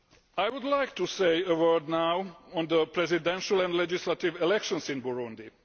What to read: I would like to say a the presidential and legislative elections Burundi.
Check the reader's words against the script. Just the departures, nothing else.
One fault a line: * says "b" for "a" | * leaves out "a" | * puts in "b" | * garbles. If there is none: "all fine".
* puts in "word now on"
* puts in "in"